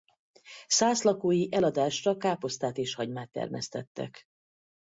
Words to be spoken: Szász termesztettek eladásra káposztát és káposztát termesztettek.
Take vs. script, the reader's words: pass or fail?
fail